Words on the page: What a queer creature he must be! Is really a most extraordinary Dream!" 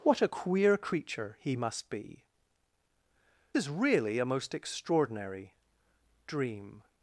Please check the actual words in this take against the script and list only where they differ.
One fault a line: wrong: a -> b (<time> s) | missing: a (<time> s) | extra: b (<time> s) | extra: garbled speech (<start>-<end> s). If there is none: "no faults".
no faults